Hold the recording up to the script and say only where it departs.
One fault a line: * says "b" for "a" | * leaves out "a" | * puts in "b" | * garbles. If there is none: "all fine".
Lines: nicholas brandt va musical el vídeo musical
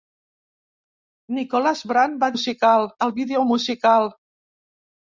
all fine